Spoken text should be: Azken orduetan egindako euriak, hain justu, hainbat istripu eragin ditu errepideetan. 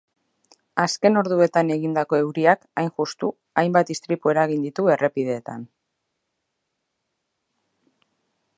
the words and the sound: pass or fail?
pass